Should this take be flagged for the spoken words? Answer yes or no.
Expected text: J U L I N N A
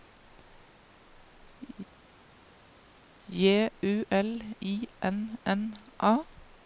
no